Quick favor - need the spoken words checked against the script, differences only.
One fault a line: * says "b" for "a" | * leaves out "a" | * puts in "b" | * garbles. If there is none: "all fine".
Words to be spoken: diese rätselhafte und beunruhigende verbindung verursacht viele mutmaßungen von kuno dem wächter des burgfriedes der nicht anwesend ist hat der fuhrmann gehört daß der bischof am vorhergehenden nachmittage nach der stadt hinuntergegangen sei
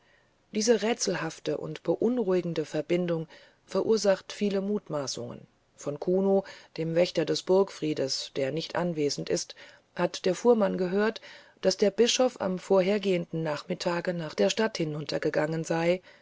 all fine